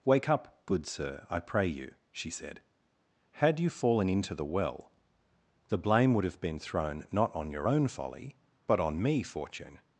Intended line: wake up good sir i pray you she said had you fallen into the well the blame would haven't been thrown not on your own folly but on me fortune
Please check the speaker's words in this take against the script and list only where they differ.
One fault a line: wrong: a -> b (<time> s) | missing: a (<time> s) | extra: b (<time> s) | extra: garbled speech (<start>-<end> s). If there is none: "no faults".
wrong: haven't -> have (6.2 s)